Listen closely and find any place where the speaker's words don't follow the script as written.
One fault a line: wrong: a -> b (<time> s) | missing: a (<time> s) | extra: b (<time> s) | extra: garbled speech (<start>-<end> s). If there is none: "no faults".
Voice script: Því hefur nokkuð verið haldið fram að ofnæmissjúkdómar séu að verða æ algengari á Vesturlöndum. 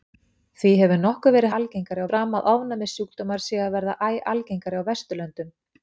wrong: haldið -> algengari (1.6 s)